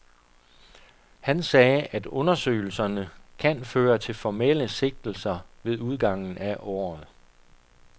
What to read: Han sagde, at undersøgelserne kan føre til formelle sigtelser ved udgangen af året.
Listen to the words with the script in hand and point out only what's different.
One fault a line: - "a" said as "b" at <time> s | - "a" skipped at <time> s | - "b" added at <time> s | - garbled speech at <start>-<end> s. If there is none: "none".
none